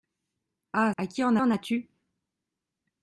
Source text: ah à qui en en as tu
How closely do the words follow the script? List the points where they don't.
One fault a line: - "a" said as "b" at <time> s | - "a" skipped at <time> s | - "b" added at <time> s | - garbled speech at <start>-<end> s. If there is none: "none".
none